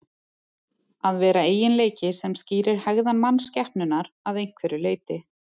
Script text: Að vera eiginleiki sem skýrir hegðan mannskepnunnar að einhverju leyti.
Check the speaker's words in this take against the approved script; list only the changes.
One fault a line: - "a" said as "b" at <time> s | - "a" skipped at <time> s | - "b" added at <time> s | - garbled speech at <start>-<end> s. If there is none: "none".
none